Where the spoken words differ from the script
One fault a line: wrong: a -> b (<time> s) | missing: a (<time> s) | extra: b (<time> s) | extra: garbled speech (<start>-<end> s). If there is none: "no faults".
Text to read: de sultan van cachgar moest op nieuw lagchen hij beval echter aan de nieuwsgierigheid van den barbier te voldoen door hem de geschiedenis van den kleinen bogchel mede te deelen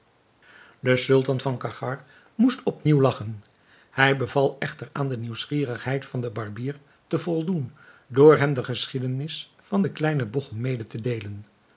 no faults